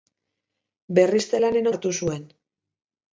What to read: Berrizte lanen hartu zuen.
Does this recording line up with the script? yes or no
yes